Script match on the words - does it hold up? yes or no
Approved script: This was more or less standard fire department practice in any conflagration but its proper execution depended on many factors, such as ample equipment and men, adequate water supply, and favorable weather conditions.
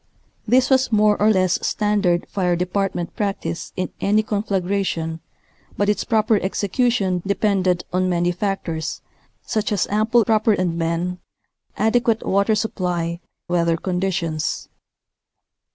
no